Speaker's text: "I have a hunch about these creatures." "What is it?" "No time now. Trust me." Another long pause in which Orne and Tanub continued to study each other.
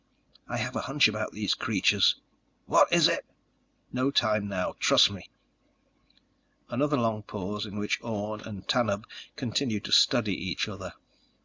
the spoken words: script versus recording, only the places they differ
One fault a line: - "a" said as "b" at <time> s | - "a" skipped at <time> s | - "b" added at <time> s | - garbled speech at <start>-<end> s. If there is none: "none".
none